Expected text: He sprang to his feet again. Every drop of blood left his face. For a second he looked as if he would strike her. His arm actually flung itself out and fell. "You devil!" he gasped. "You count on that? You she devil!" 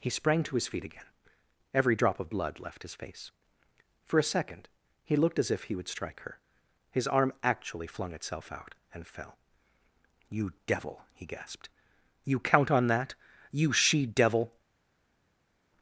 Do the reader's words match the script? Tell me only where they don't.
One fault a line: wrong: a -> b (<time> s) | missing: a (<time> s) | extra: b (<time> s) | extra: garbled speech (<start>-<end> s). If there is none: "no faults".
no faults